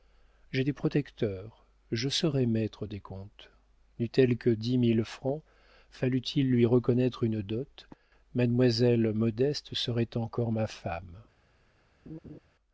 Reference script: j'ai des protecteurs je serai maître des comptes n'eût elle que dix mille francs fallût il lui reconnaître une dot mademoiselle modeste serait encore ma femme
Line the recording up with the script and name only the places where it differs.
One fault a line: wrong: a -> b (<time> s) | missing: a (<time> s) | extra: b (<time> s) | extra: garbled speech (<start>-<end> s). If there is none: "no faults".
no faults